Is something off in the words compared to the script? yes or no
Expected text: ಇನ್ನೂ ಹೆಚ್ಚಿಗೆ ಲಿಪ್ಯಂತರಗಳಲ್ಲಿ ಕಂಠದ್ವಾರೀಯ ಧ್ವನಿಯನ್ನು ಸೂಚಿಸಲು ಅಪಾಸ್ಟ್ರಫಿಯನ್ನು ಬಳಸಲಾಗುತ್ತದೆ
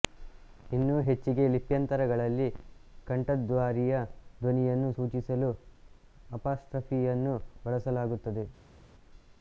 no